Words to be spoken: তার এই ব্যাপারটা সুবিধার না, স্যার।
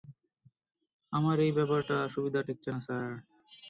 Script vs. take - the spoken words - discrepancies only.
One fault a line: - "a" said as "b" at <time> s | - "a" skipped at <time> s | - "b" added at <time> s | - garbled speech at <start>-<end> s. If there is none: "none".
- "তার" said as "আমার" at 1.1 s
- "ঠেকছে" added at 2.4 s